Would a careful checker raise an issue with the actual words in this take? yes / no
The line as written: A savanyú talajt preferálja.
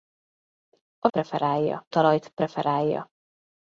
yes